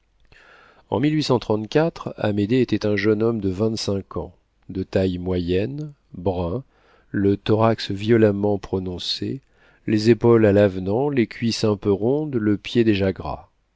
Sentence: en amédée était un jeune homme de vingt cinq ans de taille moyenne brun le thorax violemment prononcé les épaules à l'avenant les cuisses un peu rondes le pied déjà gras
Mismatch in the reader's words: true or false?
false